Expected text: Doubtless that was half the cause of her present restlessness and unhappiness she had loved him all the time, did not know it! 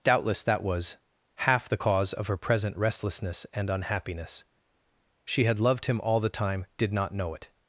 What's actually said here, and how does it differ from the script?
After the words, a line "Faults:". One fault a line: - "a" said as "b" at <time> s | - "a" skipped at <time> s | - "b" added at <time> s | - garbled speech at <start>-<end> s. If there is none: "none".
Doubtless that was half the cause of her present restlessness and unhappiness she had loved him all the time, did not know it!
Faults:
none